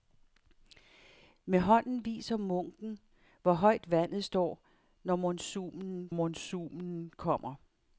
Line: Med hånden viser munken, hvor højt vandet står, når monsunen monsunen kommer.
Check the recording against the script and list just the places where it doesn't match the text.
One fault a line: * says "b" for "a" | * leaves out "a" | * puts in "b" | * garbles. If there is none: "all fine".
all fine